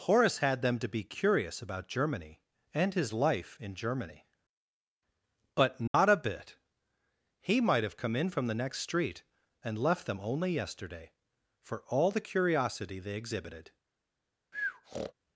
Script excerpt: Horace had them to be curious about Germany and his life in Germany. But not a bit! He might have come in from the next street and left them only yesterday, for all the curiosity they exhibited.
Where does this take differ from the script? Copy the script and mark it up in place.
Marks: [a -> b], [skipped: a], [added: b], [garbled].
Horace had them to be curious about Germany and his life in Germany. But not a bit! He might have come in from the next street and left them only yesterday, for all the curiosity they exhibited.